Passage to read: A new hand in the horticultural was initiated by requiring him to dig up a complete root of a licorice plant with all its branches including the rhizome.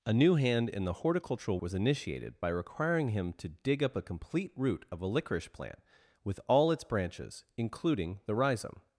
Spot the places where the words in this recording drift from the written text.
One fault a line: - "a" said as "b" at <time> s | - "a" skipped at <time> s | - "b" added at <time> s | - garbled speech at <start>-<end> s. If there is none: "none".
none